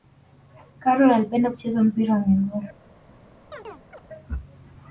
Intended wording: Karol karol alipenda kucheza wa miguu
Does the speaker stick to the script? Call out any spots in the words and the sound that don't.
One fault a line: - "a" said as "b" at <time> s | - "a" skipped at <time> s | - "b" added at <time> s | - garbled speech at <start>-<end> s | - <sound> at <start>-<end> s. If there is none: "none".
- "karol" skipped at 1.1 s
- "mpira" added at 1.8 s
- chirp at 3.5-4.0 s